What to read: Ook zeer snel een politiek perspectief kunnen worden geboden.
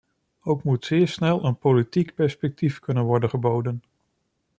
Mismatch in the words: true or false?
true